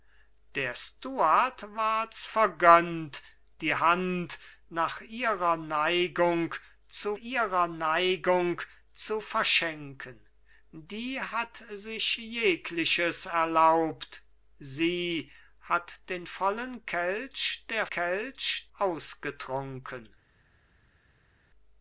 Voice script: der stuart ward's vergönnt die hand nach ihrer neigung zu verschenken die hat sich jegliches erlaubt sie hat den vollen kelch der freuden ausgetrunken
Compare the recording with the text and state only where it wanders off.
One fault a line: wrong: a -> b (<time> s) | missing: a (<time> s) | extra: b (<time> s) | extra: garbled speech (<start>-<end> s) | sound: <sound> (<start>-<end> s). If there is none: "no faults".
extra: ihrer neigung zu (7.1 s)
wrong: freuden -> kelch (17.9 s)